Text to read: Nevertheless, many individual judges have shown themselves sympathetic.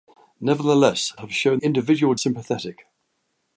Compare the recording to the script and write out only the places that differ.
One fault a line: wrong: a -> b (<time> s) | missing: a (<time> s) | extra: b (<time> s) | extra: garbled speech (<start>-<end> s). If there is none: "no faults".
missing: many individual judges (1.1 s)
wrong: themselves -> individual (1.5 s)